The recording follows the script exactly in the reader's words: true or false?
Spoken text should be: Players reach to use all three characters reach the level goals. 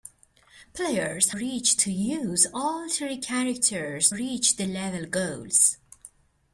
true